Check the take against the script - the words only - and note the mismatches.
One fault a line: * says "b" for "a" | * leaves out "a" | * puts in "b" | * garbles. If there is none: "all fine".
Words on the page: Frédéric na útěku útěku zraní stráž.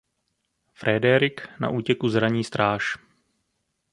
* leaves out "útěku"